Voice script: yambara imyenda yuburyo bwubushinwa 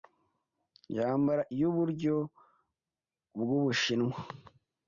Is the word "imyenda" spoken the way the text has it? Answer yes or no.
no